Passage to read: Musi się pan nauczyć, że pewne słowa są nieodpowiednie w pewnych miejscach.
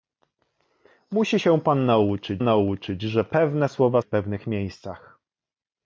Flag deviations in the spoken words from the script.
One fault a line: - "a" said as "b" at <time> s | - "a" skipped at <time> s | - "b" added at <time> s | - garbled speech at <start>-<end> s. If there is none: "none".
- "nauczyć" added at 2.4 s
- "są nieodpowiednie" skipped at 4.0 s